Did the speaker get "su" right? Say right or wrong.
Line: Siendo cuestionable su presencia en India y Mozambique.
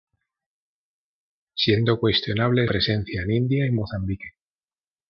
wrong